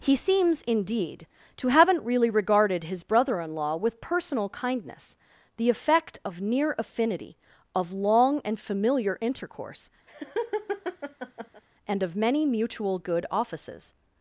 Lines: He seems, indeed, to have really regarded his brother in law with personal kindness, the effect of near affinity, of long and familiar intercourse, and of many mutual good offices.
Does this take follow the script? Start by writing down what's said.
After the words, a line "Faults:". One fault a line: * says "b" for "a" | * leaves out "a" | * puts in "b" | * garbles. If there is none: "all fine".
He seems, indeed, to haven't really regarded his brother in law with personal kindness, the effect of near affinity, of long and familiar intercourse, and of many mutual good offices.
Faults:
* says "haven't" for "have"